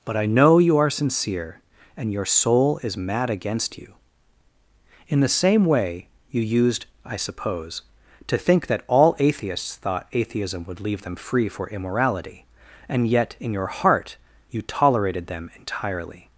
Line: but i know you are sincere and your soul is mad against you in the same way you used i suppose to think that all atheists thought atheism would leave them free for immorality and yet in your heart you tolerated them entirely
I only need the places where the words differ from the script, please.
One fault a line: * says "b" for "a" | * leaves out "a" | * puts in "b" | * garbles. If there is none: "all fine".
all fine